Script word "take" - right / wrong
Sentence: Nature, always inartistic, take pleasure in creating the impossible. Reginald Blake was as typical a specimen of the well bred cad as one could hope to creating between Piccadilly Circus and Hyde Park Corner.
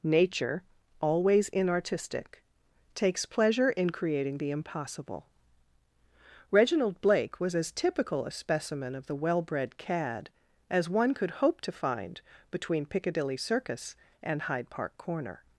wrong